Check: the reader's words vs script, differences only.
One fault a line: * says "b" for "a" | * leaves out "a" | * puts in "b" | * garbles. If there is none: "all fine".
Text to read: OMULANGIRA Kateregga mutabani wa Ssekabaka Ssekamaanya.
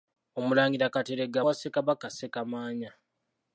* leaves out "mutabani"